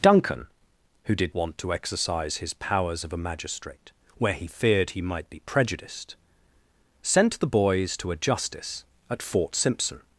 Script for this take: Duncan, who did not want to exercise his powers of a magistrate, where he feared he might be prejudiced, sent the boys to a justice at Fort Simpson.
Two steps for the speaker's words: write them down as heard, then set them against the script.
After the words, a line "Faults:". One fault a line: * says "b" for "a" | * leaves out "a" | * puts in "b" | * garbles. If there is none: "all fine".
Duncan, who did want to exercise his powers of a magistrate, where he feared he might be prejudiced, sent the boys to a justice at Fort Simpson.
Faults:
* leaves out "not"